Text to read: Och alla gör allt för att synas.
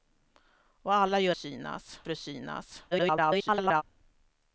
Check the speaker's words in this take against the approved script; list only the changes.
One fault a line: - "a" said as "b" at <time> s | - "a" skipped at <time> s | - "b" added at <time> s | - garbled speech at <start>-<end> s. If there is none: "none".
- "allt" said as "synas" at 1.3 s
- garbled speech at 2.9-3.8 s